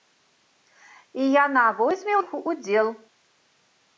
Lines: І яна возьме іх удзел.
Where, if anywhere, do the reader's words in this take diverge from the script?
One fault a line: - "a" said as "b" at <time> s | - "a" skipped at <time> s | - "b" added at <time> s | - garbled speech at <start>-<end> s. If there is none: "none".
none